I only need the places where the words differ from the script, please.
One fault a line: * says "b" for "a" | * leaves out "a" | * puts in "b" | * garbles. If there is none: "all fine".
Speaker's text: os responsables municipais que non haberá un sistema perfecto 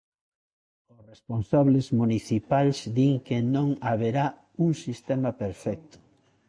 * puts in "din"